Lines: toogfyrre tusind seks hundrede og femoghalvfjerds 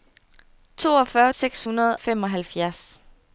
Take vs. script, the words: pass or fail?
fail